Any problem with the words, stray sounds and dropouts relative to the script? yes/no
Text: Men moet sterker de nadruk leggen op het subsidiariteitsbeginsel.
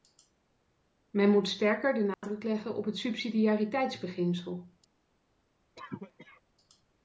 yes